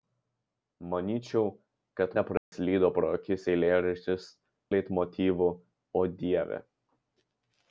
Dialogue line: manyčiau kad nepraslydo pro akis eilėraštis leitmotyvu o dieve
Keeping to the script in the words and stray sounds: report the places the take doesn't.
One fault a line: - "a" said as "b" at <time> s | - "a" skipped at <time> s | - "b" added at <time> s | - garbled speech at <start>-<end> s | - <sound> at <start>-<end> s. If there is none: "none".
- dropout at 2.4-2.5 s